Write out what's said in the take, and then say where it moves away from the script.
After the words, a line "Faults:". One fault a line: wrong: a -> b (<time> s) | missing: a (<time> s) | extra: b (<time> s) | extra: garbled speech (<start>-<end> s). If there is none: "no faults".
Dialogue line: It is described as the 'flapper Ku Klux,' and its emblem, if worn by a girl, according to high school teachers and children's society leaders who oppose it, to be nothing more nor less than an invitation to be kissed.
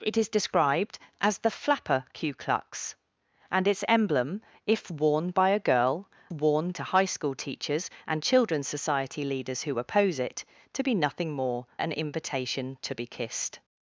It is described as the 'flapper Ku Klux,' and its emblem, if worn by a girl, worn to high school teachers and children's society leaders who oppose it, to be nothing more an invitation to be kissed.
Faults:
wrong: according -> worn (6.3 s)
missing: nor less than (11.7 s)